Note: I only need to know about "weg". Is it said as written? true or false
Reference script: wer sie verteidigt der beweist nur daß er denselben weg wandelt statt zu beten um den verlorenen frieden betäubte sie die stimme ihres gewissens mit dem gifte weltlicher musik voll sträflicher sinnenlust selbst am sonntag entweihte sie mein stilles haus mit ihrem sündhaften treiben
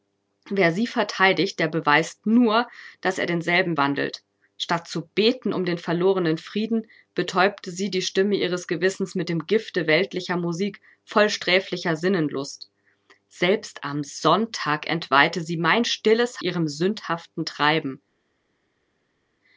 false